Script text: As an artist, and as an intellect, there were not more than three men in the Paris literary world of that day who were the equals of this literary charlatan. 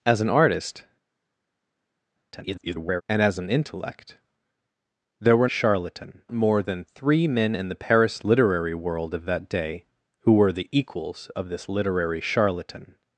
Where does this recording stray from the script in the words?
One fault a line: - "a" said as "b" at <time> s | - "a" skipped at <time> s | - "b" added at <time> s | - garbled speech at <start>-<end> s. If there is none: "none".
- garbled speech at 2.3-3.0 s
- "not" said as "charlatan" at 5.5 s